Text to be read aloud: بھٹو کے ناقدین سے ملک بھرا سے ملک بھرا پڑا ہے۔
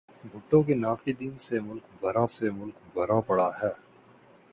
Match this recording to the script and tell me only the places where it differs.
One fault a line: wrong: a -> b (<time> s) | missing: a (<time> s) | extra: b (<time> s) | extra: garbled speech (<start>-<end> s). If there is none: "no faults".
no faults